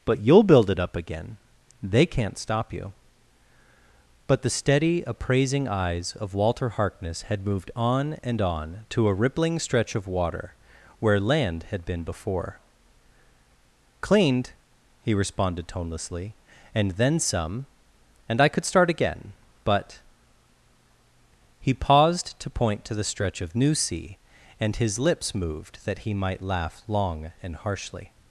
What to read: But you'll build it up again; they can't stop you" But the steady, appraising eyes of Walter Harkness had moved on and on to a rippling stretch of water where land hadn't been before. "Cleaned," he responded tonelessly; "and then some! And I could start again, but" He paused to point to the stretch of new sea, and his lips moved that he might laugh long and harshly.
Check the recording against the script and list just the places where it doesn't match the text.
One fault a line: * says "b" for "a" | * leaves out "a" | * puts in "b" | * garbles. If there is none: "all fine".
* says "had" for "hadn't"